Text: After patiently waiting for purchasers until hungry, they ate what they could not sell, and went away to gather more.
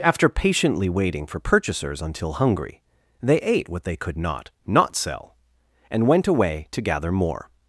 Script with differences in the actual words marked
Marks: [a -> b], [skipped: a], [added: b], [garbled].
After patiently waiting for purchasers until hungry, they ate what they could not [added: not] sell, and went away to gather more.